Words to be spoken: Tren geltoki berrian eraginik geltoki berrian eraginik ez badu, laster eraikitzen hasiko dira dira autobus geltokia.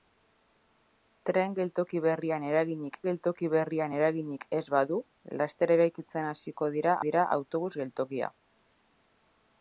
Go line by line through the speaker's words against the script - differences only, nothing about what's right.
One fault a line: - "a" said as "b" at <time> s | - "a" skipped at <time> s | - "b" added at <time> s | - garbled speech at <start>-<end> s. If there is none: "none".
none